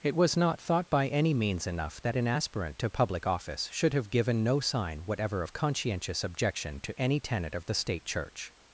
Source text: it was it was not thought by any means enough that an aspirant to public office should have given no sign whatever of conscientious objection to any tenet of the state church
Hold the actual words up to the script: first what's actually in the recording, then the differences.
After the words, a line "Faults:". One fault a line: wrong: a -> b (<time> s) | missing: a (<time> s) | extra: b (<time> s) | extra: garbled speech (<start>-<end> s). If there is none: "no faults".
it was not thought by any means enough that an aspirant to public office should have given no sign whatever of conscientious objection to any tenet of the state church
Faults:
missing: it was (0.3 s)